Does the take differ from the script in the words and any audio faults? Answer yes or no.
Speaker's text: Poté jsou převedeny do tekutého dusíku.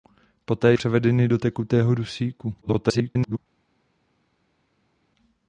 yes